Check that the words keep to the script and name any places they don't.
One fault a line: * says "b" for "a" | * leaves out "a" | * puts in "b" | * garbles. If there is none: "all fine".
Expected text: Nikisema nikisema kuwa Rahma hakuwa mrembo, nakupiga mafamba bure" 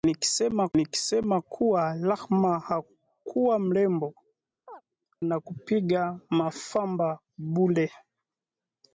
all fine